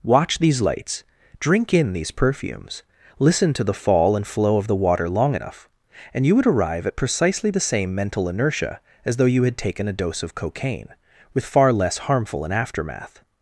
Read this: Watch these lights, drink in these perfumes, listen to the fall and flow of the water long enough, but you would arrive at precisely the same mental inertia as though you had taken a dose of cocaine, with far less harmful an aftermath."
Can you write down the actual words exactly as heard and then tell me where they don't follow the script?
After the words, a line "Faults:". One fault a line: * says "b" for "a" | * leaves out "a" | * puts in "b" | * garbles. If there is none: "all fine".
Watch these lights, drink in these perfumes, listen to the fall and flow of the water long enough, and you would arrive at precisely the same mental inertia as though you had taken a dose of cocaine, with far less harmful an aftermath."
Faults:
* says "and" for "but"